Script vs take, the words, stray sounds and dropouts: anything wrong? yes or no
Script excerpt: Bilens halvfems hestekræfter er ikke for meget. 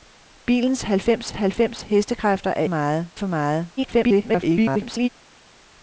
yes